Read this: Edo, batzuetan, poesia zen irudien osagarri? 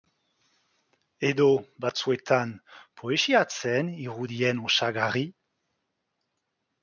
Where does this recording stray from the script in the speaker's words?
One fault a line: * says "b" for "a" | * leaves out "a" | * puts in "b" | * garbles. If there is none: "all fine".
all fine